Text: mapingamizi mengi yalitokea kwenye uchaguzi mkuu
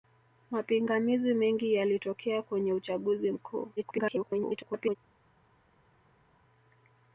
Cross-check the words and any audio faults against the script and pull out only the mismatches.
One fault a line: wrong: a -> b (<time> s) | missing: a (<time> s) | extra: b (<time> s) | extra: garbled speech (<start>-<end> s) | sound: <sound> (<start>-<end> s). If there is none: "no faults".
extra: garbled speech (3.8-5.0 s)